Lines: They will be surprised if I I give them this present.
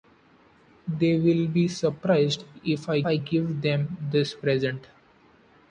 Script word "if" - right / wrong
right